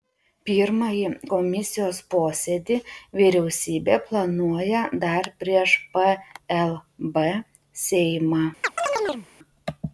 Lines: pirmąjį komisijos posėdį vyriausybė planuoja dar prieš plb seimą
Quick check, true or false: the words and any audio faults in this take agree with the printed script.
false